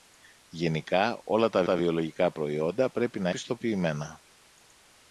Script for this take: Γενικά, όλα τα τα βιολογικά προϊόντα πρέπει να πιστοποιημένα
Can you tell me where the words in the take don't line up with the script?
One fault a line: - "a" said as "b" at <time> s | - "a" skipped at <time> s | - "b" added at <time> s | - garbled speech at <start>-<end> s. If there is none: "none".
none